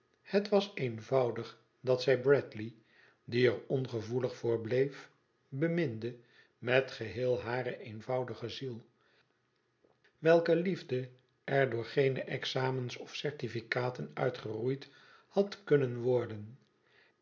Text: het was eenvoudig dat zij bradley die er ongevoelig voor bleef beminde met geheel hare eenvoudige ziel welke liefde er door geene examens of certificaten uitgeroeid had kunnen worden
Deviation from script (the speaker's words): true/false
false